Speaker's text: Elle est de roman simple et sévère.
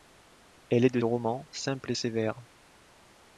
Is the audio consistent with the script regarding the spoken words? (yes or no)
yes